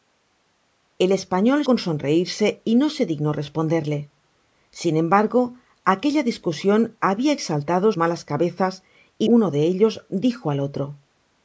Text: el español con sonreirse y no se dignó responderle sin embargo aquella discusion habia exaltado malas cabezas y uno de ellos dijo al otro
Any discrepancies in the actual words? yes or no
no